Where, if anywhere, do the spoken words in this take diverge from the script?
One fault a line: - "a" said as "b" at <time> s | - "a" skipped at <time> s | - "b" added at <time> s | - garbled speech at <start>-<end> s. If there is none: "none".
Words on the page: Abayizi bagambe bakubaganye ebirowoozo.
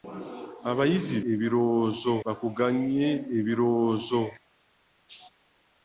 - "bagambe" said as "ebirowoozo" at 1.3 s